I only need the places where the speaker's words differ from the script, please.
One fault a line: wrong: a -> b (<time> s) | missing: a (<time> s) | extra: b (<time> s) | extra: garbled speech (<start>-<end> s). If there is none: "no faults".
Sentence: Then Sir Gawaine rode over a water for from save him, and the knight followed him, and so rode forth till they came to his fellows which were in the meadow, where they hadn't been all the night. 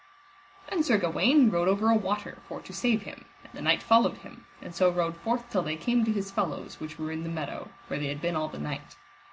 wrong: from -> to (2.6 s)
wrong: hadn't -> had (8.1 s)